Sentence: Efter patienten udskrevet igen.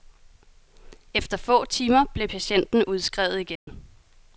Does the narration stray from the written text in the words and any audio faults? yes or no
yes